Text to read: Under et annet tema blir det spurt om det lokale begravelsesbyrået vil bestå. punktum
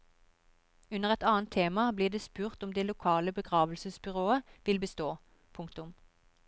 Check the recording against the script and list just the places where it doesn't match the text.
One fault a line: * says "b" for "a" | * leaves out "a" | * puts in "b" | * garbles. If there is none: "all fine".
all fine